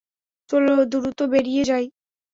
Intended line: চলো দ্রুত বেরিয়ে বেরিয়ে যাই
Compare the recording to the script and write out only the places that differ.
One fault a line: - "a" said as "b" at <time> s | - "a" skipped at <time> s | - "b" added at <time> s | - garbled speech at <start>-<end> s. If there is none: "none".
- "বেরিয়ে" skipped at 1.6 s